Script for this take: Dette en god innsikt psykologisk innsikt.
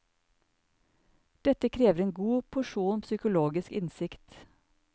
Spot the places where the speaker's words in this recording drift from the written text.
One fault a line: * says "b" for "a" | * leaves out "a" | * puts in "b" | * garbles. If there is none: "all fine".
* puts in "krever"
* says "porsjon" for "innsikt"